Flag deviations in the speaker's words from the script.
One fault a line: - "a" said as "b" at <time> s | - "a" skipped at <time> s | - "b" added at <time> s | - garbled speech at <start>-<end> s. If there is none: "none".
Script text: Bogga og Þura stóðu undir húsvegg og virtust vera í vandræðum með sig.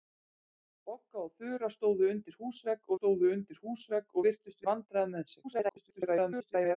- "stóðu undir húsvegg" added at 3.0 s
- "vera" skipped at 4.7 s
- garbled speech at 5.4-6.8 s